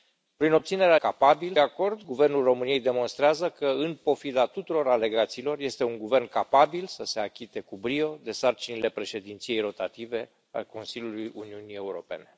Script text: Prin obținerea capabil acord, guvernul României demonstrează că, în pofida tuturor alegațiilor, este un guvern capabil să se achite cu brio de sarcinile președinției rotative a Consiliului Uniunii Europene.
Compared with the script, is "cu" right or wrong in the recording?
right